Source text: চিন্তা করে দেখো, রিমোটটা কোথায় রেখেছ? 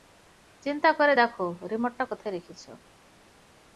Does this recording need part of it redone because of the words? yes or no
no